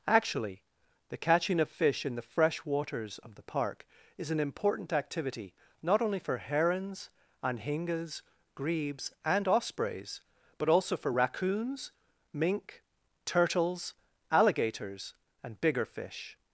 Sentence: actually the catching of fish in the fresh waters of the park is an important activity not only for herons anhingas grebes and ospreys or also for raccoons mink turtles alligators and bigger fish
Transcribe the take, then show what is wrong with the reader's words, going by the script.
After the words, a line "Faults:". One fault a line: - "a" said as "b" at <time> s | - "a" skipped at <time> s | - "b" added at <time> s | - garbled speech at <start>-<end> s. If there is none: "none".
actually the catching of fish in the fresh waters of the park is an important activity not only for herons anhingas grebes and ospreys but also for raccoons mink turtles alligators and bigger fish
Faults:
- "or" said as "but" at 10.6 s